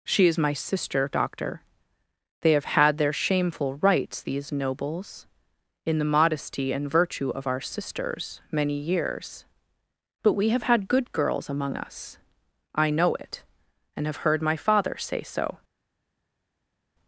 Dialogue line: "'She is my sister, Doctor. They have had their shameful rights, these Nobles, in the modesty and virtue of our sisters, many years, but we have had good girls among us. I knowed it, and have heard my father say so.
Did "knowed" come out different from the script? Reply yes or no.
yes